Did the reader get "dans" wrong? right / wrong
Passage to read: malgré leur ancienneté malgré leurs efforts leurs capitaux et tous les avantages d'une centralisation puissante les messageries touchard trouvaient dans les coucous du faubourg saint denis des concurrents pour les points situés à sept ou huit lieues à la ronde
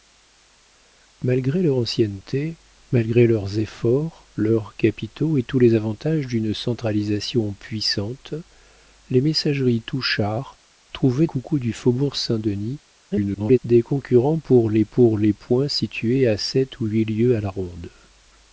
wrong